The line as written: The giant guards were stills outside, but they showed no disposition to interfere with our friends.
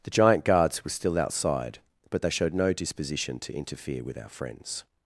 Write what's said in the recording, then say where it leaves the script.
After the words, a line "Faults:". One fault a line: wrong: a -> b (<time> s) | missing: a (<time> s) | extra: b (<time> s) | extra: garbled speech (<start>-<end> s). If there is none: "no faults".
The giant guards were still outside, but they showed no disposition to interfere with our friends.
Faults:
wrong: stills -> still (0.9 s)